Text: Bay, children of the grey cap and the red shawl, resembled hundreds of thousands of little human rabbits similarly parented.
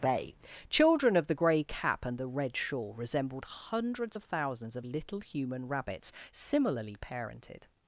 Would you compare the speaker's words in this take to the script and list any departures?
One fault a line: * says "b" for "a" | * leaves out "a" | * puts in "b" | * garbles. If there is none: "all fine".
all fine